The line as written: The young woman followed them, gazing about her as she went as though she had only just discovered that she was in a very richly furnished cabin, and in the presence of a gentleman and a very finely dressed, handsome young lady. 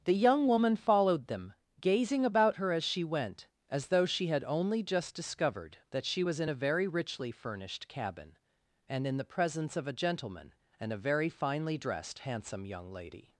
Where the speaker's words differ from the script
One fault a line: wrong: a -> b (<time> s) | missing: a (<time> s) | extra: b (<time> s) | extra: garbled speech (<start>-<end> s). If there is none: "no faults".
no faults